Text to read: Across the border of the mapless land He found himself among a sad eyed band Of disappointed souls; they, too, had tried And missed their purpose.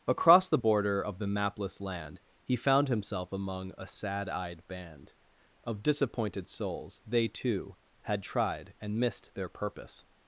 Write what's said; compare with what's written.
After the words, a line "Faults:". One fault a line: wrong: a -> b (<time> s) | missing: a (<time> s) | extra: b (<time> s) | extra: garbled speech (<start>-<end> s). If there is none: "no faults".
Across the border of the mapless land He found himself among a sad eyed band Of disappointed souls; they, too, had tried And missed their purpose.
Faults:
no faults